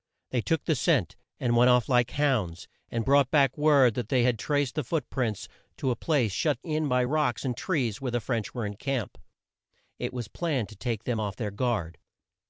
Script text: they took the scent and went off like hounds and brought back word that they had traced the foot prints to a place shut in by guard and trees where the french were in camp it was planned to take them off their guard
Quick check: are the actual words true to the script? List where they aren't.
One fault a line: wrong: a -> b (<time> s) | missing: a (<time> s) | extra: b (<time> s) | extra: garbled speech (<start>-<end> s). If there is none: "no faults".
wrong: guard -> rocks (7.0 s)